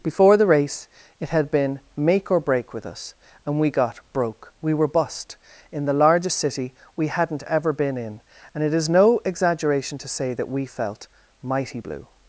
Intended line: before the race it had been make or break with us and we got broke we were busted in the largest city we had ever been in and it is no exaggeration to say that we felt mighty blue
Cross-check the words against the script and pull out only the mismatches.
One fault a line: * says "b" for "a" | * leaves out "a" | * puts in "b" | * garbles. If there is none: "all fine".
* says "bust" for "busted"
* says "hadn't" for "had"